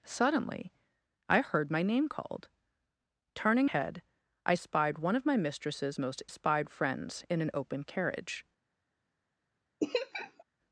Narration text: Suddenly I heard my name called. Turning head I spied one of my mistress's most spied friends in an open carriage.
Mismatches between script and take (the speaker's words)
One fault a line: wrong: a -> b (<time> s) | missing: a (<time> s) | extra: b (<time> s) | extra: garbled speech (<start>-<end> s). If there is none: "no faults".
no faults